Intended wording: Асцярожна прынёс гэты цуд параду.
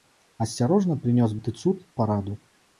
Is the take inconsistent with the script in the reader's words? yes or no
no